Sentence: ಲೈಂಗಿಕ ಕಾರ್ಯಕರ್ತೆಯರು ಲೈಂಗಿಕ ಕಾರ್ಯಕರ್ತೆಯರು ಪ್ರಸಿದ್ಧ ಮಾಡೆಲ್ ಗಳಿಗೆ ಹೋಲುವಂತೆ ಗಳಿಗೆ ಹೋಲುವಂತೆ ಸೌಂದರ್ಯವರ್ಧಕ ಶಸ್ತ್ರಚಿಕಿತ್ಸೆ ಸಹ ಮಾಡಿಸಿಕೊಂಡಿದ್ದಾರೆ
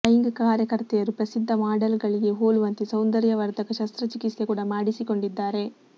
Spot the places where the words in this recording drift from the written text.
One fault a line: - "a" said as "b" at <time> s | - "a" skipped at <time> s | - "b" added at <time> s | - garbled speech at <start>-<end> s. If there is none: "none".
- "ಲೈಂಗಿಕ ಕಾರ್ಯಕರ್ತೆಯರು" skipped at 1.1 s
- "ಗಳಿಗೆ ಹೋಲುವಂತೆ" skipped at 2.8 s
- "ಸಹ" said as "ಕೂಡ" at 4.4 s